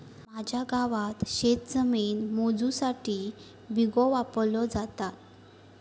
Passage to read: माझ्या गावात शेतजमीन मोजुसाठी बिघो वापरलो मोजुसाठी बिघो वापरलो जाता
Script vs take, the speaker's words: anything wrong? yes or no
yes